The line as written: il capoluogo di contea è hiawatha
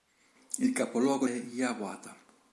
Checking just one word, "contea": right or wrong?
wrong